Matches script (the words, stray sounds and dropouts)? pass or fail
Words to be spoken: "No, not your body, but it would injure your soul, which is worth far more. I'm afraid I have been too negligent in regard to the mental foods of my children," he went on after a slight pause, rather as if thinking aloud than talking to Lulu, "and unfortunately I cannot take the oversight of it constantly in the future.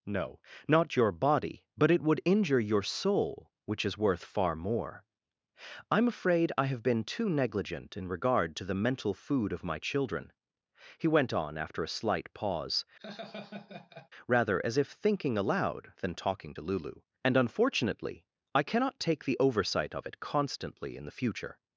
fail